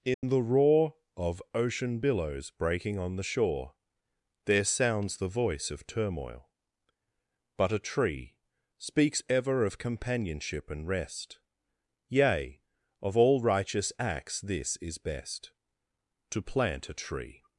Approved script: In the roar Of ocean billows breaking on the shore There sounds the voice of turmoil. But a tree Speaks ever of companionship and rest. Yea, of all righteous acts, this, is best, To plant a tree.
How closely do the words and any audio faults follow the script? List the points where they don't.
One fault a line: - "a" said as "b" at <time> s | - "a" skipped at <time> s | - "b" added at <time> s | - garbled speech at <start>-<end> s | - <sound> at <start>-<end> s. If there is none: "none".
- dropout at 0.1-0.2 s